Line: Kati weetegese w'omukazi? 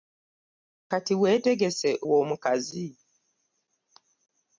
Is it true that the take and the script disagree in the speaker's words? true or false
false